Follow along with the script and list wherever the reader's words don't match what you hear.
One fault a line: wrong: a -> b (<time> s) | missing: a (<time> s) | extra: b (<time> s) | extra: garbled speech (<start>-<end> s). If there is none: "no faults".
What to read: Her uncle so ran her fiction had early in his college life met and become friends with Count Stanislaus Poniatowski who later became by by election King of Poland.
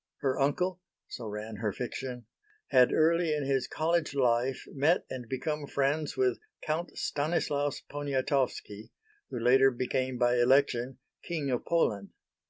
missing: by (10.4 s)